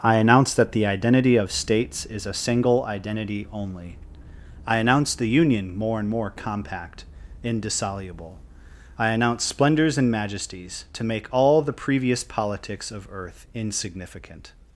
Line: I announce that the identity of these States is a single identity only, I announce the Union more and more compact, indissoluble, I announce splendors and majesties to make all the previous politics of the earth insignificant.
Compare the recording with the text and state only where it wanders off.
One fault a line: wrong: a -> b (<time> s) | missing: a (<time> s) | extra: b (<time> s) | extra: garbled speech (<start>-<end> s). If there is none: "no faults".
missing: these (1.5 s)
missing: the (13.1 s)